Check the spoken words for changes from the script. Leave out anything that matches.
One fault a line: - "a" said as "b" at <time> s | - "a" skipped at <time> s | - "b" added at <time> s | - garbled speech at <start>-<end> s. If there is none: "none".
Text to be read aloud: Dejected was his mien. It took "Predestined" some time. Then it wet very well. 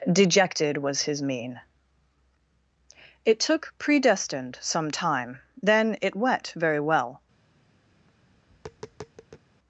none